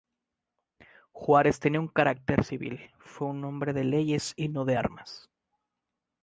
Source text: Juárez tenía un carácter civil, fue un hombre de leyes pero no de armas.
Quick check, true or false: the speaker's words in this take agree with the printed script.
false